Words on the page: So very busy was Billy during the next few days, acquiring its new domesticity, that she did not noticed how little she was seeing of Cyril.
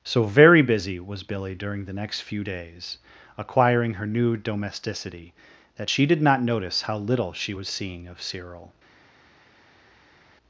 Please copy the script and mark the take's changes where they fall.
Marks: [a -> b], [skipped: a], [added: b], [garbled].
So very busy was Billy during the next few days, acquiring [its -> her] new domesticity, that she did not [noticed -> notice] how little she was seeing of Cyril.